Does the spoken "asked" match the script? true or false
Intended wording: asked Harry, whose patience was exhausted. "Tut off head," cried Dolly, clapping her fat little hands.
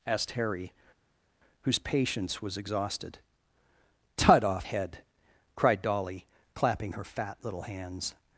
true